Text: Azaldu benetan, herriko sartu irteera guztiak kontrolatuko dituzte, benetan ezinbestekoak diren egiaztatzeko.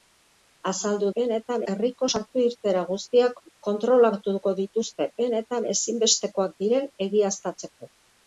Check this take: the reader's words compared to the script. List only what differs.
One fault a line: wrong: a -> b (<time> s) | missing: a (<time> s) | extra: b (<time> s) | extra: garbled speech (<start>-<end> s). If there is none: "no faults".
no faults